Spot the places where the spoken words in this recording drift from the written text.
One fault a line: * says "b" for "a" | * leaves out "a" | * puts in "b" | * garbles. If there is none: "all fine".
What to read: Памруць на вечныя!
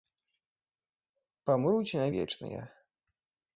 all fine